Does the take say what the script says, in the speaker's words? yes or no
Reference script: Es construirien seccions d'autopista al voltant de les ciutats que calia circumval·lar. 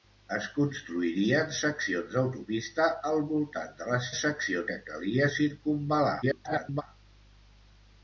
no